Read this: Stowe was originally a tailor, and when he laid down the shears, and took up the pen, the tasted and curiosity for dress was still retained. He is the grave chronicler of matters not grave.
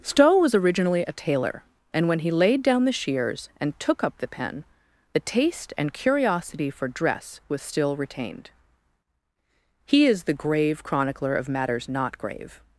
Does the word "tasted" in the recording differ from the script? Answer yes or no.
yes